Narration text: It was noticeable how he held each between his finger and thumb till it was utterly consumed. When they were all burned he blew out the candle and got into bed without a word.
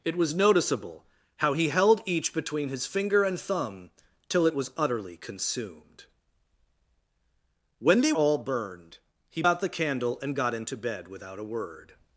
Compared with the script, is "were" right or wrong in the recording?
wrong